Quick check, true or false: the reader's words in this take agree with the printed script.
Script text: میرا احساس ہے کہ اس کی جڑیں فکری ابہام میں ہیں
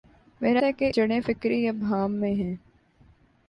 false